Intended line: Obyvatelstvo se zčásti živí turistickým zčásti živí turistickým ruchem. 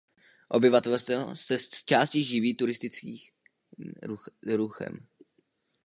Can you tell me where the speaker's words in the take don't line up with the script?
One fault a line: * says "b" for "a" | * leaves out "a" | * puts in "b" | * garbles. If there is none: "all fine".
* leaves out "zčásti živí turistickým"